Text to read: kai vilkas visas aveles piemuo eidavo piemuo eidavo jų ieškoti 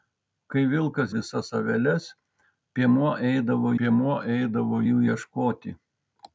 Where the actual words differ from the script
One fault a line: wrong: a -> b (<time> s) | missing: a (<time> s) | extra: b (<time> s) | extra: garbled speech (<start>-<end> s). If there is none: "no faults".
no faults